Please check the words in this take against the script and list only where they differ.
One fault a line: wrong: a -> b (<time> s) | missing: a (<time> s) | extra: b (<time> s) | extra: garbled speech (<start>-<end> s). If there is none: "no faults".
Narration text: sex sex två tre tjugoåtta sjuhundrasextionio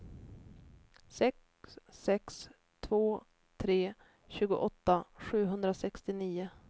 no faults